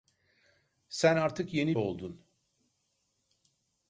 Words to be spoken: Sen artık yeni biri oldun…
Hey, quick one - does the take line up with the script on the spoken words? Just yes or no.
no